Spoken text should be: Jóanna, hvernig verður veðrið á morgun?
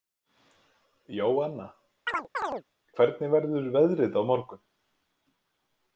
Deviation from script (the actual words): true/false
false